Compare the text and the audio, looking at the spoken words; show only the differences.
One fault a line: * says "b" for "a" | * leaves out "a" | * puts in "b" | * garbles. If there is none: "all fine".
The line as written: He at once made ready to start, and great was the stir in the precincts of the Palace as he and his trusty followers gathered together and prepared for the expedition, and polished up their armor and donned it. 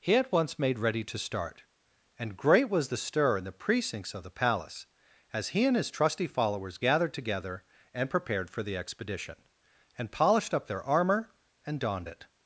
all fine